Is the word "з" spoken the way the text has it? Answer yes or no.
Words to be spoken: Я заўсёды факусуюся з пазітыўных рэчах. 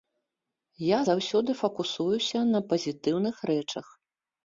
no